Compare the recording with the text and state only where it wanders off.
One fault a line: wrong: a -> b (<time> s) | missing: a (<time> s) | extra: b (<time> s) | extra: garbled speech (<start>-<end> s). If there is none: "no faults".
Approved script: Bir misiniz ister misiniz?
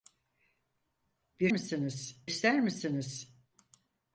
no faults